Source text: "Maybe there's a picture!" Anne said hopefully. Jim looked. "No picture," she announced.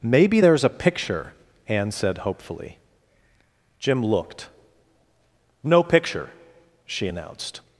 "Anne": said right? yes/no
yes